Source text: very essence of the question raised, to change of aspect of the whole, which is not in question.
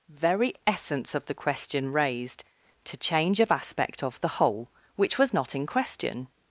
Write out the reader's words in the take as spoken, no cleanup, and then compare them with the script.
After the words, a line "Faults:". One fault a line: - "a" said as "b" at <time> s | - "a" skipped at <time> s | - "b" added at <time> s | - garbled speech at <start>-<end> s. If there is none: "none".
very essence of the question raised, to change of aspect of the whole, which was not in question.
Faults:
- "is" said as "was" at 5.2 s